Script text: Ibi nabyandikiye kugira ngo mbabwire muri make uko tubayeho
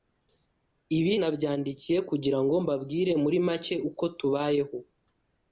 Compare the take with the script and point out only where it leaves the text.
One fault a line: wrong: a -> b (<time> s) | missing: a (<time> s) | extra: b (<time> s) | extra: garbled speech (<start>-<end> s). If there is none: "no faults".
no faults